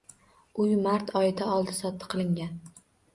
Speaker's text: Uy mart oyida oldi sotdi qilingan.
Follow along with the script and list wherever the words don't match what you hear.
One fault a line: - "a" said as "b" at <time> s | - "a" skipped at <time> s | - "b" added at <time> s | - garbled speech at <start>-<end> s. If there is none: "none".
none